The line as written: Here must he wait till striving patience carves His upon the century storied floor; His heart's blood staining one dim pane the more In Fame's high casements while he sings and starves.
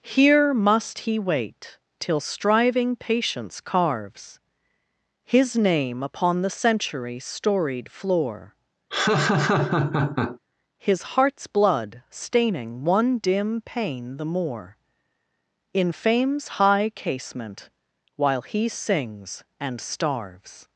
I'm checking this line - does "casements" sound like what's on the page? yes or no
no